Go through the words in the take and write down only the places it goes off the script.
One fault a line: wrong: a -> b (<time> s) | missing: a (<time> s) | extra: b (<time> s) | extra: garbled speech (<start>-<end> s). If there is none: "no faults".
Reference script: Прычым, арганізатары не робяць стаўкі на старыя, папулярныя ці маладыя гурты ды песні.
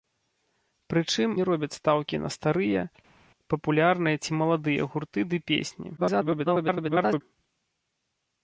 missing: арганізатары (1.3 s)
extra: garbled speech (6.0-7.2 s)